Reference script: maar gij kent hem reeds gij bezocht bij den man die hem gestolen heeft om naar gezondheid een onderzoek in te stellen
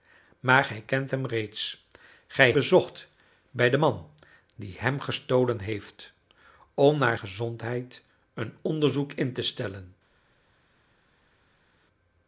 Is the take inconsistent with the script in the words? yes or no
no